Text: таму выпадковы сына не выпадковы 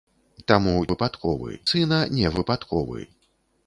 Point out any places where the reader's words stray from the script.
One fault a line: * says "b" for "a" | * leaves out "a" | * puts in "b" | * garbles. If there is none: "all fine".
all fine